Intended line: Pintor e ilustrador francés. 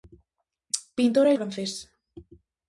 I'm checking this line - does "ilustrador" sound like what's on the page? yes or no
no